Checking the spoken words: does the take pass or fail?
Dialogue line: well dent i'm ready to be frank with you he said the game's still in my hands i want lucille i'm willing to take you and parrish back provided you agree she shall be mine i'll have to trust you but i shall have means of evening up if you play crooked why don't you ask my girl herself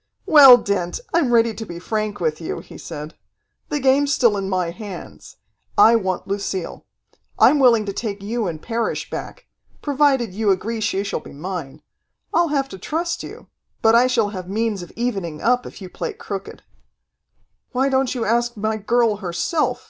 pass